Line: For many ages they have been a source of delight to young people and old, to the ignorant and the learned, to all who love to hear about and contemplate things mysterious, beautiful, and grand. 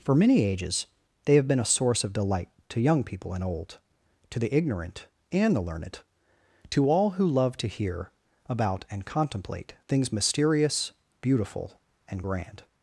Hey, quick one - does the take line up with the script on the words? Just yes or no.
yes